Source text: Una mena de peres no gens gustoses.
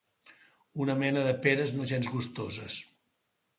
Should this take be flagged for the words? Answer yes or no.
no